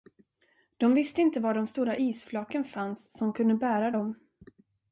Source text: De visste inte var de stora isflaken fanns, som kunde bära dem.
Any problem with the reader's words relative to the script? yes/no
no